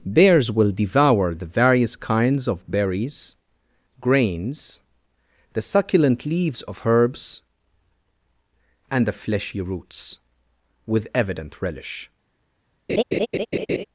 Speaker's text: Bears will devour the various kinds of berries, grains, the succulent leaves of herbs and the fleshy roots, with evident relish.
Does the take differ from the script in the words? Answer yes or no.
no